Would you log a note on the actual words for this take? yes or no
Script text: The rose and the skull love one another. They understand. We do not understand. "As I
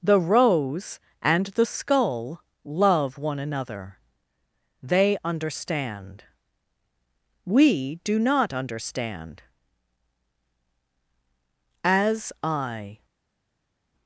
no